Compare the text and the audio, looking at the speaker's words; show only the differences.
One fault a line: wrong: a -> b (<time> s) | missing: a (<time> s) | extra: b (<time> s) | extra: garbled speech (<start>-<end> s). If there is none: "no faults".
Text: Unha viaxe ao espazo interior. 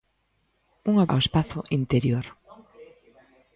missing: viaxe (1.1 s)